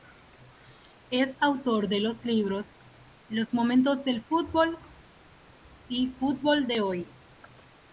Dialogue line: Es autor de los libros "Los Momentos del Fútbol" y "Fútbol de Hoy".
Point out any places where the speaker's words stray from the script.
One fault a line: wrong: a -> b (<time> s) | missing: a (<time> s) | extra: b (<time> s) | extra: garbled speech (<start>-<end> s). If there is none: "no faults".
no faults